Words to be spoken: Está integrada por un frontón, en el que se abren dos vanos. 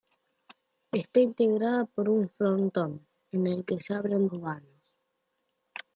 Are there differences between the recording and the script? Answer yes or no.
yes